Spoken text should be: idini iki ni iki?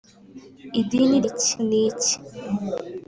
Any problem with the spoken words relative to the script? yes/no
no